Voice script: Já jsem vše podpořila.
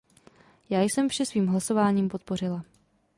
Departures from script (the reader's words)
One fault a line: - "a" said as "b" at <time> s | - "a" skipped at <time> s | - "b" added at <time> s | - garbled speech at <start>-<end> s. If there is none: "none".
- "svým hlasováním" added at 1.2 s